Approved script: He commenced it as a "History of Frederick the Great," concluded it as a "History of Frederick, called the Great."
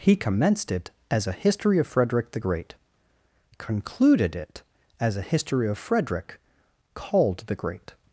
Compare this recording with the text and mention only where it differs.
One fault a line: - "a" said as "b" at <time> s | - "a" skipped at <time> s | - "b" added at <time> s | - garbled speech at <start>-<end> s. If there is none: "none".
none